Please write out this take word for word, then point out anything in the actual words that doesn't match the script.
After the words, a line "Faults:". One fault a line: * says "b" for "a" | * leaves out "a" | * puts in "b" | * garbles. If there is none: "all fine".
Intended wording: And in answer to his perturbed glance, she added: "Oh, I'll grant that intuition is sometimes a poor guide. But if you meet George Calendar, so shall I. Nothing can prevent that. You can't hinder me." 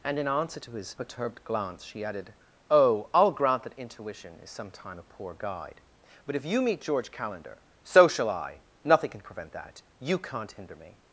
And in answer to his perturbed glance, she added: "Oh, I'll grant that intuition is sometime a poor guide. But if you meet George Calendar, so shall I. Nothing can prevent that. You can't hinder me."
Faults:
* says "sometime" for "sometimes"